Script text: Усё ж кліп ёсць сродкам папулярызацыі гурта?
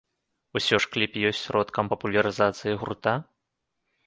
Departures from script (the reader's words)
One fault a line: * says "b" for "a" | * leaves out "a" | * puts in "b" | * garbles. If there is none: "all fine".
all fine